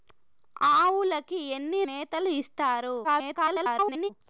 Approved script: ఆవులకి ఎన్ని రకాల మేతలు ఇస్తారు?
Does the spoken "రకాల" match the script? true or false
false